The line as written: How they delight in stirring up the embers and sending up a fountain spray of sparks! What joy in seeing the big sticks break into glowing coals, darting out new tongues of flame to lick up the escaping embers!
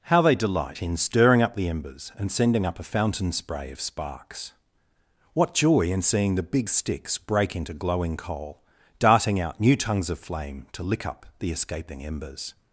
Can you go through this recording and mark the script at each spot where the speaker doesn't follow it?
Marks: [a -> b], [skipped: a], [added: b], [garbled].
How they delight in stirring up the embers and sending up a fountain spray of sparks! What joy in seeing the big sticks break into glowing [coals, -> coal] darting out new tongues of flame to lick up the escaping embers!